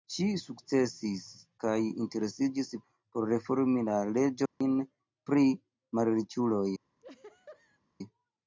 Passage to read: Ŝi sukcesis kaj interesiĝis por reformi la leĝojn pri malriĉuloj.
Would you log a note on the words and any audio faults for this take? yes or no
yes